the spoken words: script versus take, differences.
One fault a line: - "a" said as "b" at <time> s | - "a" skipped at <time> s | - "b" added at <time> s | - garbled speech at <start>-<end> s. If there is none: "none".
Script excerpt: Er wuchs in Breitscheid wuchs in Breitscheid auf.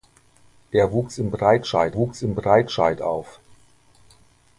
none